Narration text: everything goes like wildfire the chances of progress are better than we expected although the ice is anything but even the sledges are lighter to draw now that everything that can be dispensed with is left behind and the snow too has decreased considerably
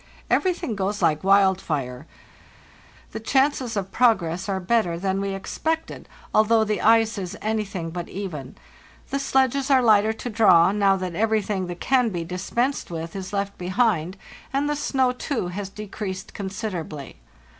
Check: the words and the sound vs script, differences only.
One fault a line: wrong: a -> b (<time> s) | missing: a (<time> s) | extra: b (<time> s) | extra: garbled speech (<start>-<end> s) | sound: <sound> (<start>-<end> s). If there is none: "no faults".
no faults